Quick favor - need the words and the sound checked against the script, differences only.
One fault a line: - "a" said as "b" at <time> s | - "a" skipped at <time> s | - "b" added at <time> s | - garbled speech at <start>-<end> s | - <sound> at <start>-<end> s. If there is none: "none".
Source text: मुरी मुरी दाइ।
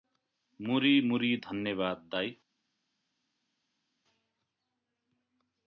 - "धन्यवाद" added at 1.3 s